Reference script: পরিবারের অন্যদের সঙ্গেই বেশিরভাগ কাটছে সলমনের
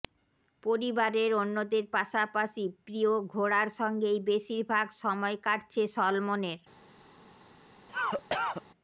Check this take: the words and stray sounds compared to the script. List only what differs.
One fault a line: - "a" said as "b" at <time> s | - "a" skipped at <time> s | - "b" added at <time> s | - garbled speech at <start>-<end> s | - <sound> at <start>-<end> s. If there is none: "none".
- "পাশাপাশি প্রিয় ঘোড়ার" added at 1.9 s
- "সময়" added at 5.0 s
- cough at 7.9-8.6 s